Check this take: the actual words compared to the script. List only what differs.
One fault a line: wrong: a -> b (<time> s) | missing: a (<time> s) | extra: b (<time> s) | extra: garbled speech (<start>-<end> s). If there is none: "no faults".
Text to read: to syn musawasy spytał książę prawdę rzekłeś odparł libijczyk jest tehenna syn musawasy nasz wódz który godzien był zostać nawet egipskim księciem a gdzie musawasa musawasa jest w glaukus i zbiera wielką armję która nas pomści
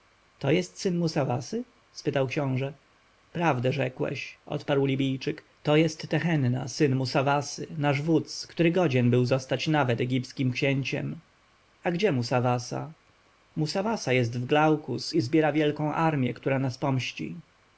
extra: jest (0.5 s)
extra: to (5.6 s)